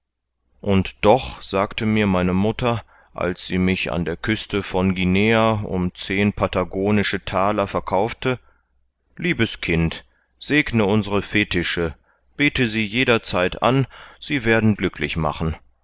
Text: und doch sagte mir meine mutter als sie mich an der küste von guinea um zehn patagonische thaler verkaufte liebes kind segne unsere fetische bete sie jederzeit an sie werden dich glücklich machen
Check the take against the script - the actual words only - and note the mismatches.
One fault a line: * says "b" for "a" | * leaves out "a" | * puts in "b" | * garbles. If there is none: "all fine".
* leaves out "dich"